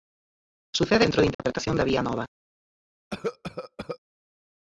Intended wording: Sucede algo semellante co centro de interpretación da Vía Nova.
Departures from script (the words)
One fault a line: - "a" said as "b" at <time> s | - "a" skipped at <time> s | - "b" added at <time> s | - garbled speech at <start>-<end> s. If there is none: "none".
- "algo semellante co" skipped at 1.1 s